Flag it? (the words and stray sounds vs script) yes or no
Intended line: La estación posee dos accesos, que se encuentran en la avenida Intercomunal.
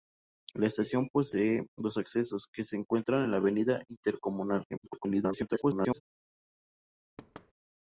yes